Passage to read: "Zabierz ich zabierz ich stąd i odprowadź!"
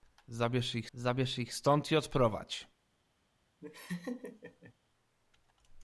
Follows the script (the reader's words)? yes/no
yes